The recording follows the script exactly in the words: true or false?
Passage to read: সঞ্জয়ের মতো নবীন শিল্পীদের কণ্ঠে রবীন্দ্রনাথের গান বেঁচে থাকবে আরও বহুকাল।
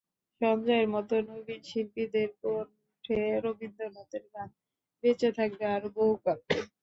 true